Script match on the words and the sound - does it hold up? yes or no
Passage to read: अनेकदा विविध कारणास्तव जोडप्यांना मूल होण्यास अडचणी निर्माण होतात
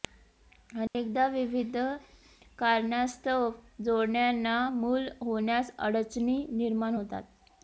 no